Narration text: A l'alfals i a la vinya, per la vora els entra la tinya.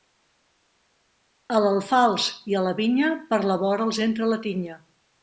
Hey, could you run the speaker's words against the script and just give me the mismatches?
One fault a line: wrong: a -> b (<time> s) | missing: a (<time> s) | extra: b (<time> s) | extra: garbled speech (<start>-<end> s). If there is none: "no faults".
no faults